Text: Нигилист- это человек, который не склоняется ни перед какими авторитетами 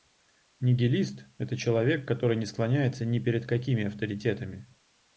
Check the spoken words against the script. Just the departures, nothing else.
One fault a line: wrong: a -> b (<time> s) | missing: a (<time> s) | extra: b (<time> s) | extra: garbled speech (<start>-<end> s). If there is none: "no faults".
no faults